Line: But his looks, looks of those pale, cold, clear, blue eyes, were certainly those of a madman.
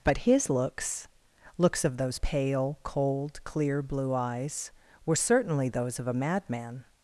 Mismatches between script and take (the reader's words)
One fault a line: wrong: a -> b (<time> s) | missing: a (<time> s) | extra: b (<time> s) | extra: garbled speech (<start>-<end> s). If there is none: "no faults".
no faults